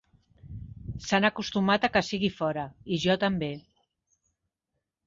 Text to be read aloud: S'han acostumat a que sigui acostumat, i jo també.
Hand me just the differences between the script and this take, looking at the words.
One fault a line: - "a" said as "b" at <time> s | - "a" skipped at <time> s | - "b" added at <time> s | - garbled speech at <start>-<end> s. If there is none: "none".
- "acostumat" said as "fora" at 2.4 s